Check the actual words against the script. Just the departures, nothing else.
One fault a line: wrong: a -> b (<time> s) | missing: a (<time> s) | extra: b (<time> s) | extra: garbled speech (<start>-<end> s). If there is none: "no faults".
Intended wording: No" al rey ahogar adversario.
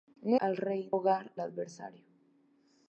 no faults